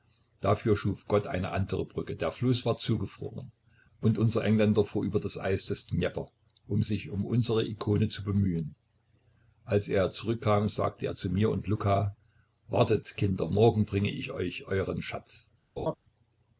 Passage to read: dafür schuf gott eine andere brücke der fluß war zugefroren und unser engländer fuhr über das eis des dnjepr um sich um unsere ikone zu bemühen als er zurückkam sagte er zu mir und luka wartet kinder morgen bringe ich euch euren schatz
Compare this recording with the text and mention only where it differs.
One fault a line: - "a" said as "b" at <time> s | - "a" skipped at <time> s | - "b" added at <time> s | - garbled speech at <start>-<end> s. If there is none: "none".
none